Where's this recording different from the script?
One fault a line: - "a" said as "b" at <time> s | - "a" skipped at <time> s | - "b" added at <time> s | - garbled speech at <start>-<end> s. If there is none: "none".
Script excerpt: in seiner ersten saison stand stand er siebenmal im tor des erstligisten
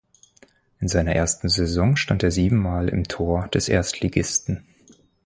- "stand" skipped at 2.2 s